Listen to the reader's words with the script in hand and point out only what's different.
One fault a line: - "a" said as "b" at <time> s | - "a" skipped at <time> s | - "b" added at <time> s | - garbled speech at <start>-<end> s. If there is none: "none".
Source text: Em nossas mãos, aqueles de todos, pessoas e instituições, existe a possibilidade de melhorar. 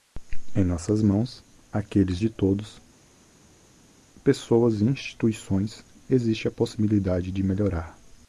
none